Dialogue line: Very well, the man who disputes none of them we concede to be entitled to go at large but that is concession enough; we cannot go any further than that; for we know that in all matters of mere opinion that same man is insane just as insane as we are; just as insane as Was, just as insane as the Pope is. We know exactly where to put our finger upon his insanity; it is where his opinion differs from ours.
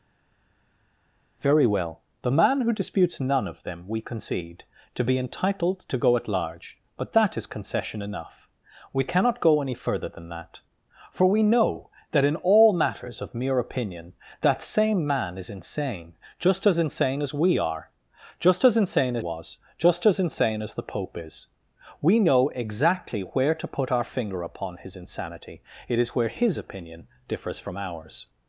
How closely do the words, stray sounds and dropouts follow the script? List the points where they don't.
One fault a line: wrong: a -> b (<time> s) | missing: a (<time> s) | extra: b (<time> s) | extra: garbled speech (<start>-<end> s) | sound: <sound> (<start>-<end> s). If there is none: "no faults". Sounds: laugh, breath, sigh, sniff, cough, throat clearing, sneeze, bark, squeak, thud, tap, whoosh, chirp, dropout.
no faults